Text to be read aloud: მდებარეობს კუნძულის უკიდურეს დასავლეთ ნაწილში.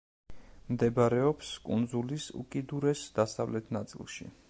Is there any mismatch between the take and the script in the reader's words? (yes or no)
no